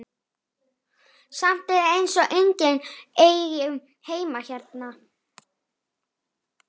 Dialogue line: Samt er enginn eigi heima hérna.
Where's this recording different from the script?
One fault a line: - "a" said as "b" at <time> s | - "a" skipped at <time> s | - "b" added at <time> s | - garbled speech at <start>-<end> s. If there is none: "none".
- "eins og" added at 1.9 s